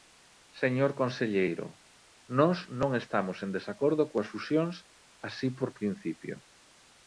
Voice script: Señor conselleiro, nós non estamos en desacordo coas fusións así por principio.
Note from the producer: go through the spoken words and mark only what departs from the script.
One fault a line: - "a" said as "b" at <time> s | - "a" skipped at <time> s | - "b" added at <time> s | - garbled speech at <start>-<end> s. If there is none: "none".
none